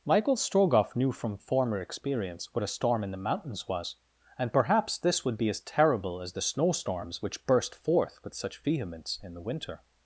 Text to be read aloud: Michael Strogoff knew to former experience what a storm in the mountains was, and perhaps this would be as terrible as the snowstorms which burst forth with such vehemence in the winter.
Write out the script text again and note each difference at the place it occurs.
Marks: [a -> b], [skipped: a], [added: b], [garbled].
Michael Strogoff knew [to -> from] former experience what a storm in the mountains was, and perhaps this would be as terrible as the snowstorms which burst forth with such vehemence in the winter.